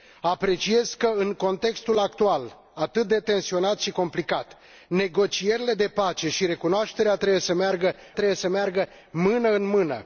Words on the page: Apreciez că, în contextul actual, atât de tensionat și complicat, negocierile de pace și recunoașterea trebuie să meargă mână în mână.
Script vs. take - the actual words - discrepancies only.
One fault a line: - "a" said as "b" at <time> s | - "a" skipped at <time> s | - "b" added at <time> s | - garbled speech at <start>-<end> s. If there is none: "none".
- "trebuie să meargă" added at 8.1 s